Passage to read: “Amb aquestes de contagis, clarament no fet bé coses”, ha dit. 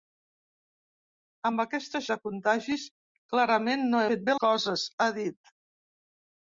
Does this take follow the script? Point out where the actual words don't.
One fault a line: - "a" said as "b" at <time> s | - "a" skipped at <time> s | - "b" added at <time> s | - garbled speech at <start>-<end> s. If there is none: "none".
none